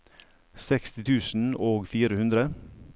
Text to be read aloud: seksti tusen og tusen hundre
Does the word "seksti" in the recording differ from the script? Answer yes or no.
no